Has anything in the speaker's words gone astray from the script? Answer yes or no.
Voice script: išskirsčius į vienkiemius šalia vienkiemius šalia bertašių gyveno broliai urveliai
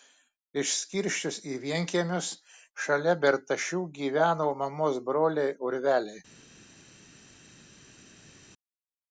yes